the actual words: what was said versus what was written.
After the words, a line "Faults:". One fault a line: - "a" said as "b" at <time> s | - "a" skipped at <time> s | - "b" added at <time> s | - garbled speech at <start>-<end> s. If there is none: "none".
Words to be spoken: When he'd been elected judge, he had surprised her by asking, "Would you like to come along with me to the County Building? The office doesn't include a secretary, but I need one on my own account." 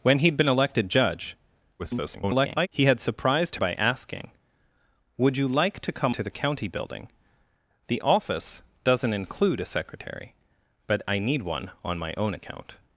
When he'd been elected judge, [garbled] he had surprised by asking, "Would you like to come to the County Building? The office doesn't include a secretary, but I need one on my own account."
Faults:
- garbled speech at 1.8-2.7 s
- "her" skipped at 3.6 s
- "along with me" skipped at 6.1 s